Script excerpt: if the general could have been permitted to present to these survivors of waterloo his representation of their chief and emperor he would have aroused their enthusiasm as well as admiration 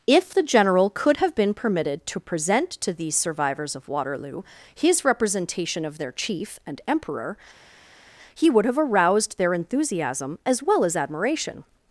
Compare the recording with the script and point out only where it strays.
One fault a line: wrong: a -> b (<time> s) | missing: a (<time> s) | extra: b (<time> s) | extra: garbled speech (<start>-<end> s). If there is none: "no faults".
no faults